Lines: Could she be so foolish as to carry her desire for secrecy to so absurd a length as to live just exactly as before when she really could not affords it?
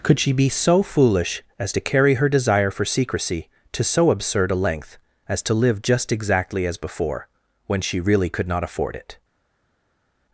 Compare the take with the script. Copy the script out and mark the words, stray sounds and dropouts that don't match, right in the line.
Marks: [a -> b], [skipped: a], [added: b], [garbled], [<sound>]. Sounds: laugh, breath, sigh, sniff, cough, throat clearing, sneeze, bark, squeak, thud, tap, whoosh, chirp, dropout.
Could she be so foolish as to carry her desire for secrecy to so absurd a length as to live just exactly as before when she really could not [affords -> afford] it?